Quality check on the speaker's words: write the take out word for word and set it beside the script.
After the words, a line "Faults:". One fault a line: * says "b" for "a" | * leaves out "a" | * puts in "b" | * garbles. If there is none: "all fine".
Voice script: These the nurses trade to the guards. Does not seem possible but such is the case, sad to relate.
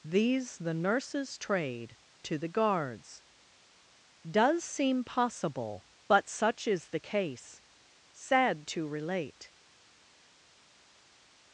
These the nurses trade to the guards. Does seem possible but such is the case, sad to relate.
Faults:
* leaves out "not"